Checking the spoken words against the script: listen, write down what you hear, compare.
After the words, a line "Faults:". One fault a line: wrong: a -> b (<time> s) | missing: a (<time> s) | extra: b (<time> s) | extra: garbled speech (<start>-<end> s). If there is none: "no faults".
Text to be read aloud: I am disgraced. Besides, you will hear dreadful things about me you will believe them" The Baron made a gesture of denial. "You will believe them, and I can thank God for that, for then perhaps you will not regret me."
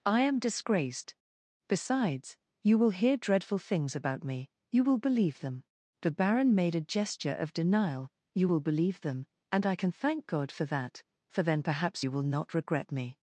I am disgraced. Besides, you will hear dreadful things about me you will believe them" The Baron made a gesture of denial. "You will believe them, and I can thank God for that, for then perhaps you will not regret me."
Faults:
no faults